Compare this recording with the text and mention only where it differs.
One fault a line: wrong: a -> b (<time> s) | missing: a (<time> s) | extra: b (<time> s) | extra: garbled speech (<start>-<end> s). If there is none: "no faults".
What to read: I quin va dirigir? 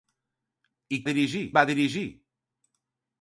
wrong: quin -> dirigir (1.1 s)